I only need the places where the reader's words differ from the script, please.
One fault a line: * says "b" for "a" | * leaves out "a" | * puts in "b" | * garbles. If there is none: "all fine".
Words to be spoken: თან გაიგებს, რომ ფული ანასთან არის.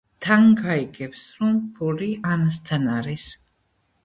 all fine